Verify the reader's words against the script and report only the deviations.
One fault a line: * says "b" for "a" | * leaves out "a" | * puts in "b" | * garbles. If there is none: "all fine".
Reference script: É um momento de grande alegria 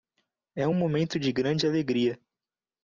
all fine